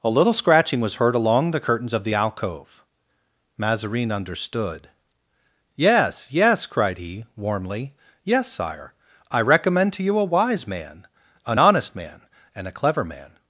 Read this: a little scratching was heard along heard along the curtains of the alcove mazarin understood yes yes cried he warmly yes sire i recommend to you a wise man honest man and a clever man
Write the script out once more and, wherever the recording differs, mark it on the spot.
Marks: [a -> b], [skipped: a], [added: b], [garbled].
a little scratching was heard along [skipped: heard along] the curtains of the alcove mazarin understood yes yes cried he warmly yes sire i recommend to you a wise man [added: an] honest man and a clever man